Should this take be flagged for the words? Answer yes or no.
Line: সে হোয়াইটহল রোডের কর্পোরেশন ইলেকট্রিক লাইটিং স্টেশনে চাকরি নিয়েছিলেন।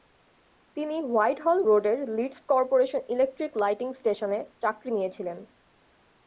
yes